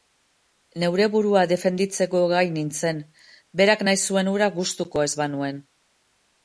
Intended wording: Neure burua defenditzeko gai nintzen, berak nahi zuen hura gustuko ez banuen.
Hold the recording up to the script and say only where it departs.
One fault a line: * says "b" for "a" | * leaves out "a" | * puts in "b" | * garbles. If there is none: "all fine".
all fine